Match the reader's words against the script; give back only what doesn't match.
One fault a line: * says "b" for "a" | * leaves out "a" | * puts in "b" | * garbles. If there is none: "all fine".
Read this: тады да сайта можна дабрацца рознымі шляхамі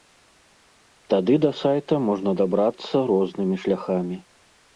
all fine